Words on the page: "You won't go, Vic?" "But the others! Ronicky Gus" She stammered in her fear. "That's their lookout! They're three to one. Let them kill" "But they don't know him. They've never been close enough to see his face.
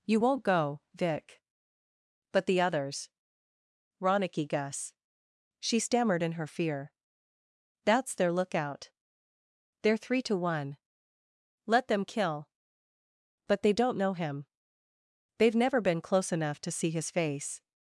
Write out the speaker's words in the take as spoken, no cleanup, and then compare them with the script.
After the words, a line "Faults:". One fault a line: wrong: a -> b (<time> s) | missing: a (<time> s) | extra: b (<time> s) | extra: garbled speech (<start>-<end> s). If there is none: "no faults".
"You won't go, Vic?" "But the others! Ronicky Gus" She stammered in her fear. "That's their lookout! They're three to one. Let them kill" "But they don't know him. They've never been close enough to see his face.
Faults:
no faults